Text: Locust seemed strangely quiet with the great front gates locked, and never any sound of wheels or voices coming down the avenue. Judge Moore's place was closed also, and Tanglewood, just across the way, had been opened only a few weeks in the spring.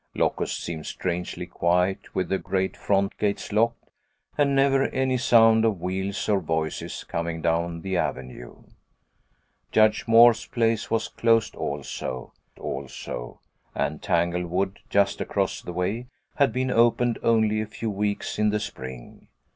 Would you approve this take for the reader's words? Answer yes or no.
no